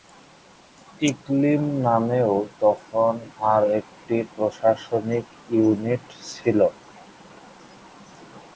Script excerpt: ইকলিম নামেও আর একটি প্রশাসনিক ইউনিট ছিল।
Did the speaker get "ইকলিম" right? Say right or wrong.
right